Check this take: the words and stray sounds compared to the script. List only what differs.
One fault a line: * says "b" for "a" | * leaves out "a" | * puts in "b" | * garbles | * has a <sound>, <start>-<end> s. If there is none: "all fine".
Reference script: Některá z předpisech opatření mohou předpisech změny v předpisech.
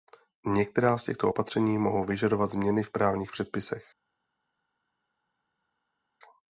* says "těchto" for "předpisech"
* says "vyžadovat" for "předpisech"
* puts in "právních"